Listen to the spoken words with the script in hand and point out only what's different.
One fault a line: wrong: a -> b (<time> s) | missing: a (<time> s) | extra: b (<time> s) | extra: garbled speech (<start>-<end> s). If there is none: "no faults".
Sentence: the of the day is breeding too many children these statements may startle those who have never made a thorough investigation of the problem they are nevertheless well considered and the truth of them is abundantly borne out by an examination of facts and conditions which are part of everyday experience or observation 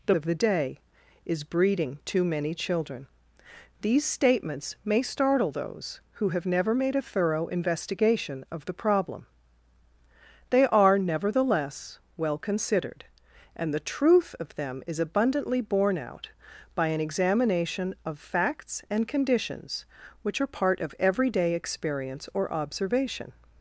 no faults